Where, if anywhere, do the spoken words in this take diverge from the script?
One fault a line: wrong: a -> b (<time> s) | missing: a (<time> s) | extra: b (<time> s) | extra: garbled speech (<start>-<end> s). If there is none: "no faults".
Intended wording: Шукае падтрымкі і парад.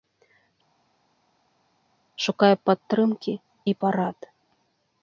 no faults